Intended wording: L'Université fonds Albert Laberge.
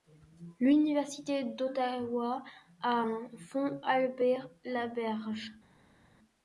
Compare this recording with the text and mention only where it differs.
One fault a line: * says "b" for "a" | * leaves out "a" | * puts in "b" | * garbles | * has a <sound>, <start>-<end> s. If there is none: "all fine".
* puts in "d'Ottawa a un"